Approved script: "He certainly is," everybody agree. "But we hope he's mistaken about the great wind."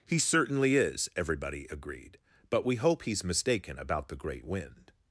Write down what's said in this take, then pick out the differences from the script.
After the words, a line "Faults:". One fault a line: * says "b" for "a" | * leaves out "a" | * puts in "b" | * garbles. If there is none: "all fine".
"He certainly is," everybody agreed. "But we hope he's mistaken about the great wind."
Faults:
* says "agreed" for "agree"